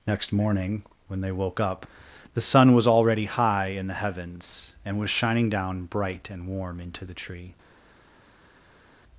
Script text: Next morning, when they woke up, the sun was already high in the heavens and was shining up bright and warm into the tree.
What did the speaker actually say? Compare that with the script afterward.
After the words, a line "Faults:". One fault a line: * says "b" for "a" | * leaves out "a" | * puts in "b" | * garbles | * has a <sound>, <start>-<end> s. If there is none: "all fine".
Next morning, when they woke up, the sun was already high in the heavens and was shining down bright and warm into the tree.
Faults:
* says "down" for "up"